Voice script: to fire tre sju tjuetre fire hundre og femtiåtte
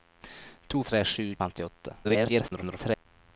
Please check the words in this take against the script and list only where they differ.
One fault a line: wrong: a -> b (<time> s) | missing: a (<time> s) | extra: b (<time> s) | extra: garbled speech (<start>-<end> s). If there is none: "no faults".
missing: fire (0.8 s)
missing: tjuetre fire hundre (1.3 s)
extra: garbled speech (2.0-3.1 s)